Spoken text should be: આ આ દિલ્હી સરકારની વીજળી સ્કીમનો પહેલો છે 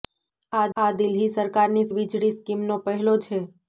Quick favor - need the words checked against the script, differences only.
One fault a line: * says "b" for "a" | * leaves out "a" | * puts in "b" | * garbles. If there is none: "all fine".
all fine